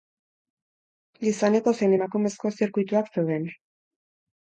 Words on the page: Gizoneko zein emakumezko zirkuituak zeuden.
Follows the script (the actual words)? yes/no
yes